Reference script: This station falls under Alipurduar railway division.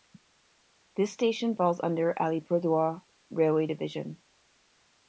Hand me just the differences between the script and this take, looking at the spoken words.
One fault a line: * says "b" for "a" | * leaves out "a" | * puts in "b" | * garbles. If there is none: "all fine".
all fine